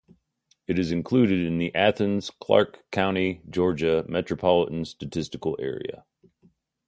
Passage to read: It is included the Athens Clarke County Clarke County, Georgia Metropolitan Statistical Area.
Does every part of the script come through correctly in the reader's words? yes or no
no